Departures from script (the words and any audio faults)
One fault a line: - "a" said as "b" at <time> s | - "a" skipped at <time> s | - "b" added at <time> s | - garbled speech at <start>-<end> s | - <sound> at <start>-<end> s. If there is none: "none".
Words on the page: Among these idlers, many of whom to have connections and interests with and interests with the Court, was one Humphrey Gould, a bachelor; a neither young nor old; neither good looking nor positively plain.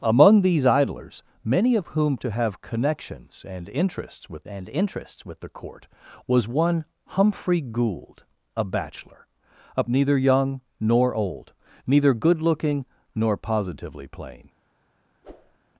- whoosh at 15.2-15.6 s